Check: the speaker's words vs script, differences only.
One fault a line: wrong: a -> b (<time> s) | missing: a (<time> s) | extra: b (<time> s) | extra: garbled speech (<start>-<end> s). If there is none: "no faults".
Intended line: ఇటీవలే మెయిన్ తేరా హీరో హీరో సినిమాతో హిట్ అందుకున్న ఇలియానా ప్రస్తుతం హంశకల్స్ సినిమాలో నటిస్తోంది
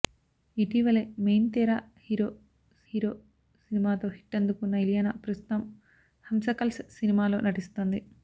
no faults